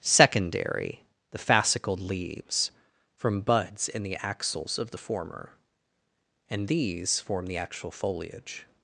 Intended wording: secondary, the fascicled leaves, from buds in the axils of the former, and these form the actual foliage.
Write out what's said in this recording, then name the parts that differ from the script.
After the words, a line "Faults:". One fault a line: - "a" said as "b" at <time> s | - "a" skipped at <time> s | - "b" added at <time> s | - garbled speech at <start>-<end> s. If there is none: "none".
secondary, the fascicled leaves, from buds in the axils of the former, and these form the actual foliage.
Faults:
none